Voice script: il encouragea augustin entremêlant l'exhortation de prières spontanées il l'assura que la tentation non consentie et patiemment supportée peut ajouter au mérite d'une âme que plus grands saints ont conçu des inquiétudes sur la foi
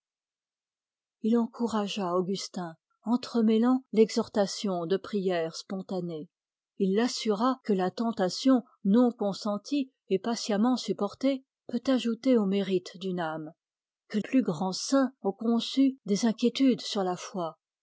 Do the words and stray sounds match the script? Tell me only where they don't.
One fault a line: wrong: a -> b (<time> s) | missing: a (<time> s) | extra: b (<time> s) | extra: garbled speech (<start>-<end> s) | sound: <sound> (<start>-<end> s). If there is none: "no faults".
no faults